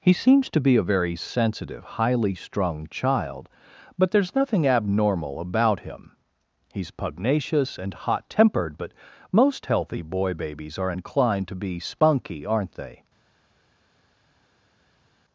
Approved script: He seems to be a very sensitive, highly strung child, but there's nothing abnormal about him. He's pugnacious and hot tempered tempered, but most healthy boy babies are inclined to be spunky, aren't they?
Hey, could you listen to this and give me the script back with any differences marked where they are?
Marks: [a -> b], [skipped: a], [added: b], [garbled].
He seems to be a very sensitive, highly strung child, but there's nothing abnormal about him. He's pugnacious and hot tempered [skipped: tempered,] but most healthy boy babies are inclined to be spunky, aren't they?